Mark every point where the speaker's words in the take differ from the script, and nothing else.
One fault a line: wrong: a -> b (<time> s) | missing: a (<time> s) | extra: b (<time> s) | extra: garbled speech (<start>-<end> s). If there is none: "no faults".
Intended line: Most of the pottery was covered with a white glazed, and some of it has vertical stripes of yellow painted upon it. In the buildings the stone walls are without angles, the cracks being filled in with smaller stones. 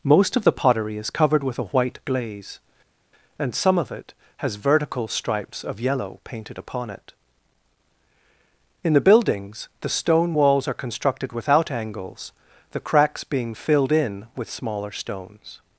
wrong: was -> is (1.0 s)
wrong: glazed -> glaze (2.0 s)
extra: constructed (10.7 s)